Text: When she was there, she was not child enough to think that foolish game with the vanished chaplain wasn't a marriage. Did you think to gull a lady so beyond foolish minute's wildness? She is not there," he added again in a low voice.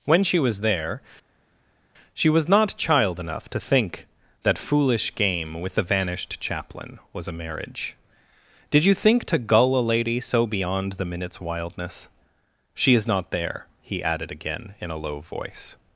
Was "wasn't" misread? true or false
true